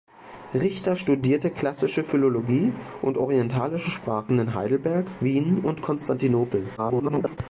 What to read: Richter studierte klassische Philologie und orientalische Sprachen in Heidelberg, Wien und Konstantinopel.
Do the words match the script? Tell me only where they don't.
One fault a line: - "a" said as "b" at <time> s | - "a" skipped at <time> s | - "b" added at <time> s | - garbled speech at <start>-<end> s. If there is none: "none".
- garbled speech at 6.8-7.4 s